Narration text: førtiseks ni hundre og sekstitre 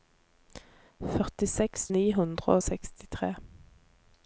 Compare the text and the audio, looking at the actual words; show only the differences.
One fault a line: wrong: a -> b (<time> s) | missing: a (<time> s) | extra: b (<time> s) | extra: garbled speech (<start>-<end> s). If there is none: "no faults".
no faults